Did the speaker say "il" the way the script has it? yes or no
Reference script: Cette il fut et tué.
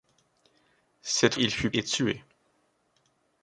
yes